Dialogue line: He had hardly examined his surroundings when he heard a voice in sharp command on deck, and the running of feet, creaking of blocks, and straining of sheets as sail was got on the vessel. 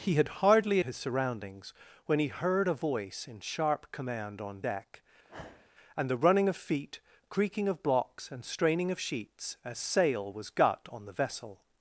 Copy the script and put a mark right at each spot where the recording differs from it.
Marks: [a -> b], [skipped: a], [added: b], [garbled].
He had hardly [skipped: examined] his surroundings when he heard a voice in sharp command on deck, and the running of feet, creaking of blocks, and straining of sheets as sail was got on the vessel.